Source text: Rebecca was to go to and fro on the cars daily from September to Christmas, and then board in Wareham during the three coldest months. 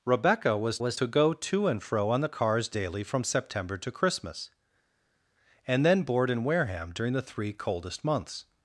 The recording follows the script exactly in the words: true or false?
false